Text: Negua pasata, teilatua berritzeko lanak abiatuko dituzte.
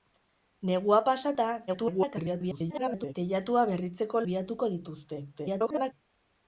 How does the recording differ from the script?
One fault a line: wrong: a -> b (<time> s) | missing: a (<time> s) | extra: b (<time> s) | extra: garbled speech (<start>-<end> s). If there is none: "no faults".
extra: garbled speech (1.7-3.1 s)
missing: lanak (4.2 s)
extra: garbled speech (5.3-5.9 s)